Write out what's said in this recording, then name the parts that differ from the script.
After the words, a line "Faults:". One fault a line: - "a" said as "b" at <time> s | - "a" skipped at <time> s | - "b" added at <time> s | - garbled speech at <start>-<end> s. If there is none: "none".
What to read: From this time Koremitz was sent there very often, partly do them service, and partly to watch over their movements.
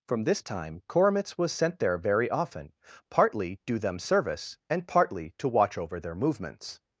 From this time Koremitz was sent there very often, partly do them service, and partly to watch over their movements.
Faults:
none